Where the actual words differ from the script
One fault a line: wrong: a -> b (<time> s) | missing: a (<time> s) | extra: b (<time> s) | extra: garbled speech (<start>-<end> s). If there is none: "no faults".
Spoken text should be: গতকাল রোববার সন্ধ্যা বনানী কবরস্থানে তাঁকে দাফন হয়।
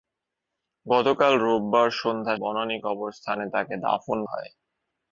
no faults